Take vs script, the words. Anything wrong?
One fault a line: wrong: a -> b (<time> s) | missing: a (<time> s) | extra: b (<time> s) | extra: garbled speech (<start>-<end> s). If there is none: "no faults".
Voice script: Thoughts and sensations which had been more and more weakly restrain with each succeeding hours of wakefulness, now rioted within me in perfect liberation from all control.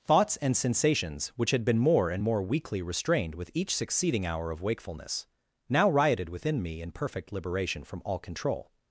wrong: restrain -> restrained (2.8 s)
wrong: hours -> hour (4.2 s)